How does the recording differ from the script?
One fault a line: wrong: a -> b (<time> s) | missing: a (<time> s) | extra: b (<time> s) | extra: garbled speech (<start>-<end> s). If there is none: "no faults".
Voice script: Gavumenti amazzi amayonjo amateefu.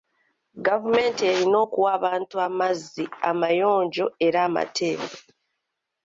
extra: erina okuwa abantu (1.3 s)
extra: era (4.3 s)